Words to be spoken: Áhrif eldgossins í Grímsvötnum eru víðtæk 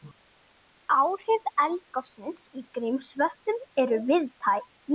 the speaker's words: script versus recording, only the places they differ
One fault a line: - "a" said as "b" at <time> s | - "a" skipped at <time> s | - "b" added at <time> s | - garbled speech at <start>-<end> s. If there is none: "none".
none